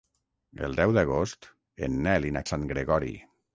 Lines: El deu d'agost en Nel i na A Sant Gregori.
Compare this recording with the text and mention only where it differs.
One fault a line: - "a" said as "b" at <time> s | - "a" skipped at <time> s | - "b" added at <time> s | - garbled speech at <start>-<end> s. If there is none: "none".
none